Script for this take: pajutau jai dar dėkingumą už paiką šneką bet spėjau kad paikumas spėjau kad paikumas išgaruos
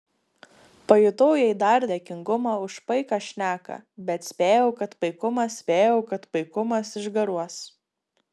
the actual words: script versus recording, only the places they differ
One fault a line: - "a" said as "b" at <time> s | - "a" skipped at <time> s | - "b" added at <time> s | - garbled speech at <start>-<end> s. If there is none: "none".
none